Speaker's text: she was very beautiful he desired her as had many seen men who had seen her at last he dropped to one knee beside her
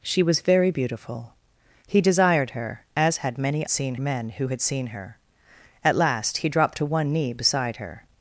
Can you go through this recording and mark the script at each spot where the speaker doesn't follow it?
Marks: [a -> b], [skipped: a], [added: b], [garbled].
she was very beautiful he desired her as had many seen men who had seen her at last he dropped to one knee beside her